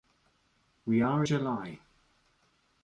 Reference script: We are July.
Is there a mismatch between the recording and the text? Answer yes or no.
no